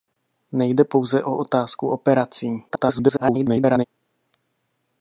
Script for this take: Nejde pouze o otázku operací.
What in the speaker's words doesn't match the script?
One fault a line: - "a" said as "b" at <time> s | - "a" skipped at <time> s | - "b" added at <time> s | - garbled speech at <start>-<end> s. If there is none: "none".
- garbled speech at 2.7-3.8 s